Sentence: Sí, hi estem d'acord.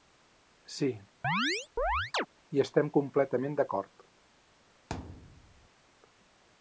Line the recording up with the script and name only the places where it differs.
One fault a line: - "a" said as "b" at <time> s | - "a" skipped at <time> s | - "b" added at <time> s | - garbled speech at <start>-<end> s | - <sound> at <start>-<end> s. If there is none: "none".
- chirp at 1.2-2.3 s
- "completament" added at 3.0 s
- thud at 4.9-5.7 s